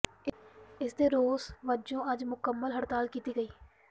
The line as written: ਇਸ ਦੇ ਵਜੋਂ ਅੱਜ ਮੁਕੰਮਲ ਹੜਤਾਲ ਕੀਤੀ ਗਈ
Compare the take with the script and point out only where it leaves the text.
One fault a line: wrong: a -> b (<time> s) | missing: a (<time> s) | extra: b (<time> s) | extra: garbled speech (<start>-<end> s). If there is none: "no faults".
extra: ਰੋਸ (1.1 s)